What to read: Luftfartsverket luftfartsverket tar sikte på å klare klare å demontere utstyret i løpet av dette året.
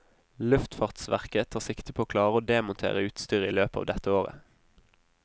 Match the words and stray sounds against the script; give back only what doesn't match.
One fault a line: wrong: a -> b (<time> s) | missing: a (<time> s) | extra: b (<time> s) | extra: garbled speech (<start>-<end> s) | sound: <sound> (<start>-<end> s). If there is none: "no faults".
missing: luftfartsverket (1.5 s)
missing: klare (2.4 s)